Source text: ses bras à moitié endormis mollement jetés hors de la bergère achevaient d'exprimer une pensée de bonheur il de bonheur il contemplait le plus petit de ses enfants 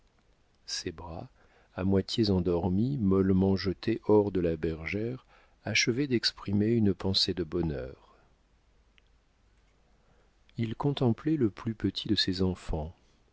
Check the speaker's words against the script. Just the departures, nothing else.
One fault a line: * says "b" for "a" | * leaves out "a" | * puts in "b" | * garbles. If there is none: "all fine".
* leaves out "de bonheur il"